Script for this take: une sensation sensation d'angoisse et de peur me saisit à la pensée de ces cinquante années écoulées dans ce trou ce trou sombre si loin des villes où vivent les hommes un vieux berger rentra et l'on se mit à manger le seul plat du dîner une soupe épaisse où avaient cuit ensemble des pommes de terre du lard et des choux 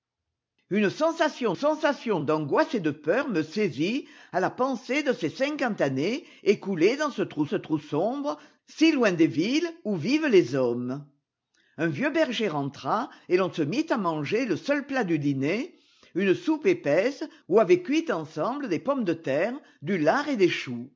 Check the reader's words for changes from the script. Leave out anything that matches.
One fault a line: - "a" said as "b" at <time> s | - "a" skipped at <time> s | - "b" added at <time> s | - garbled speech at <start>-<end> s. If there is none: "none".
none